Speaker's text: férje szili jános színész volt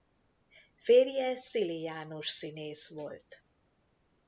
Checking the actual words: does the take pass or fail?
pass